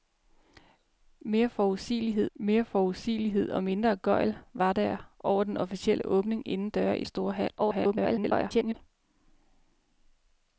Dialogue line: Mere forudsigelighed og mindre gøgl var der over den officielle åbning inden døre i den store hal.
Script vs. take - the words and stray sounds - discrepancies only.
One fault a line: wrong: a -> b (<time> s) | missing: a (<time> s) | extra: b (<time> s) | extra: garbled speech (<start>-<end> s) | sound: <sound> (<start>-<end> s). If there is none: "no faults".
extra: mere forudsigelighed (2.3 s)
missing: den (7.0 s)
extra: garbled speech (7.6-8.7 s)